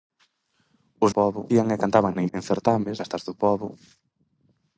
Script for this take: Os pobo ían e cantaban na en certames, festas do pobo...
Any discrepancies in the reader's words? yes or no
no